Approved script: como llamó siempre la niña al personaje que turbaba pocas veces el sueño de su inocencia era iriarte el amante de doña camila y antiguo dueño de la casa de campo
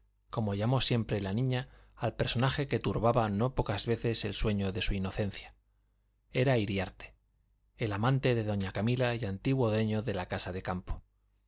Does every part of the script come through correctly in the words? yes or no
no